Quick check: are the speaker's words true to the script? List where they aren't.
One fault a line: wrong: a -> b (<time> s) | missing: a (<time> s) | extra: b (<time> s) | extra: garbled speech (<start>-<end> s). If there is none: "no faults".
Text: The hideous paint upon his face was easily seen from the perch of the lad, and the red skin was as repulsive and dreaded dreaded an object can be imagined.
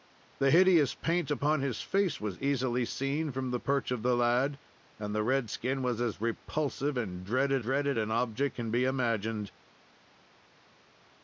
no faults